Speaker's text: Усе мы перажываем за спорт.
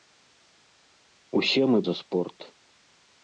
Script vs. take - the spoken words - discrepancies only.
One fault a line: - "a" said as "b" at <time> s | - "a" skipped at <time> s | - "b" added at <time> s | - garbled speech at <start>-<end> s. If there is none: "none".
- "перажываем" skipped at 1.8 s